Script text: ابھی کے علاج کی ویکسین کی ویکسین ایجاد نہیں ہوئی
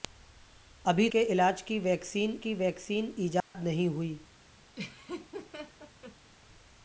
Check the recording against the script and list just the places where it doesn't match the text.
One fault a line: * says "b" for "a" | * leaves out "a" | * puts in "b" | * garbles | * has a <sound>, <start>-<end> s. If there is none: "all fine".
* has a dropout, 3.4-3.5 s
* has a laugh, 4.7-6.3 s